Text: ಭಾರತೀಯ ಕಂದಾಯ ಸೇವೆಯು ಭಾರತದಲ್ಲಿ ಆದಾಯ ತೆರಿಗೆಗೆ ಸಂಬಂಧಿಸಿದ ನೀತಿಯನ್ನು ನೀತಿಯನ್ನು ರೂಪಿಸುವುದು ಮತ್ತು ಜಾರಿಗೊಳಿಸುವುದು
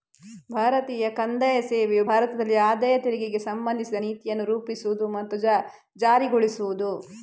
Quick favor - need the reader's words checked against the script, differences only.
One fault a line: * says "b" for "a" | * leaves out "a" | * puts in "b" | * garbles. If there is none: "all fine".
* leaves out "ನೀತಿಯನ್ನು"